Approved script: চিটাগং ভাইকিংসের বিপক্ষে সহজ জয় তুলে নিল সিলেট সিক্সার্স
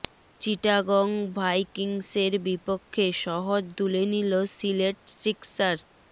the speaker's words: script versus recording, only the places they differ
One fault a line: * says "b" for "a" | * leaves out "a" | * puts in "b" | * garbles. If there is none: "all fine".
* leaves out "জয়"